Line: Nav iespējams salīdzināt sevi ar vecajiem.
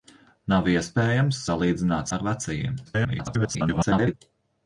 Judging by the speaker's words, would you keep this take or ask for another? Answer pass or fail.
fail